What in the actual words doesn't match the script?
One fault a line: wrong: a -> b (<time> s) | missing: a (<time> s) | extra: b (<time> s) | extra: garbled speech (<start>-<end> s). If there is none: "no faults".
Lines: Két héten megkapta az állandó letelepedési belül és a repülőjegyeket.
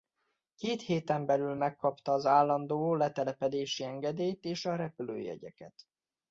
extra: belül (1.2 s)
wrong: belül -> engedélyt (3.8 s)